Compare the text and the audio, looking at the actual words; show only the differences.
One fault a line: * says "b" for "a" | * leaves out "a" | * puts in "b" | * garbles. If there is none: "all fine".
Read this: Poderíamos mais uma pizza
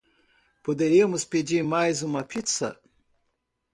* puts in "pedir"